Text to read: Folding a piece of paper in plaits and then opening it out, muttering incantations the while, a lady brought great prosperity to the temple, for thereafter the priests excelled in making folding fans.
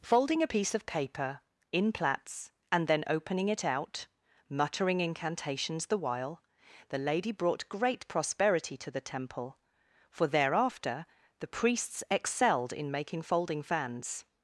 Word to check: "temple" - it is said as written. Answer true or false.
true